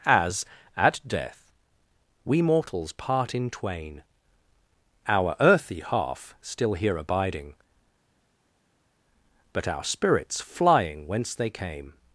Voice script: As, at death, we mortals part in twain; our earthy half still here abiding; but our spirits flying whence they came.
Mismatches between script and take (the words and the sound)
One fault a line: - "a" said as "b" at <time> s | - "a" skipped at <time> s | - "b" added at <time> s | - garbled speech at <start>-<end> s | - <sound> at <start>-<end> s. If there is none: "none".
none